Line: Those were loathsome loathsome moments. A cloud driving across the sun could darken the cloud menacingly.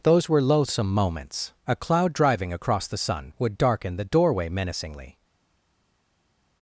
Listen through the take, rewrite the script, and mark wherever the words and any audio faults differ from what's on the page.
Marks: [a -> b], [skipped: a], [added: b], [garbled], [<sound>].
Those were loathsome [skipped: loathsome] moments. A cloud driving across the sun [could -> would] darken the [cloud -> doorway] menacingly.